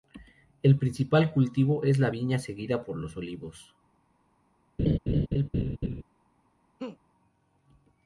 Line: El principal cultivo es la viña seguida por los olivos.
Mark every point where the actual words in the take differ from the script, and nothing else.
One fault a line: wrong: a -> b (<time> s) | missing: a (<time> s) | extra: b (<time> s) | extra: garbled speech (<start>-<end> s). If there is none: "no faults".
no faults